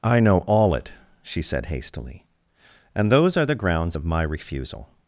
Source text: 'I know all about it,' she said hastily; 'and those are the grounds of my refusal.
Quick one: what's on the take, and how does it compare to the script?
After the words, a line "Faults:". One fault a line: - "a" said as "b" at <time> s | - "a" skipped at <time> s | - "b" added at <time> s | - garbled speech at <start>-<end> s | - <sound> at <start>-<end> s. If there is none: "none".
'I know all it,' she said hastily; 'and those are the grounds of my refusal.
Faults:
- "about" skipped at 0.7 s